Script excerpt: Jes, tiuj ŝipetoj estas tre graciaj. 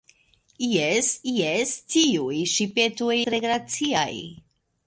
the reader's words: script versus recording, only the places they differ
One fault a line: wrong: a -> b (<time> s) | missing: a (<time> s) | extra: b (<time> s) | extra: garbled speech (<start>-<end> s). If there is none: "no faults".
extra: jes (1.3 s)
missing: estas (3.2 s)